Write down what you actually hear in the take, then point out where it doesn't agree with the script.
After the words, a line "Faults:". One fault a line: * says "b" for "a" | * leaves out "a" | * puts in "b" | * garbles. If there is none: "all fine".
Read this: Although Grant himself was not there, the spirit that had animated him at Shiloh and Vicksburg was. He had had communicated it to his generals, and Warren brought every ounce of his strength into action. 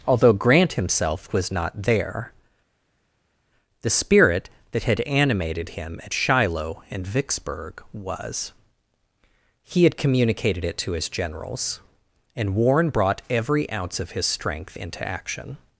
Although Grant himself was not there, the spirit that had animated him at Shiloh and Vicksburg was. He had communicated it to his generals, and Warren brought every ounce of his strength into action.
Faults:
* leaves out "had"